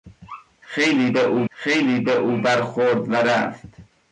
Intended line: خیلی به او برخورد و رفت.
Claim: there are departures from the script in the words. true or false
true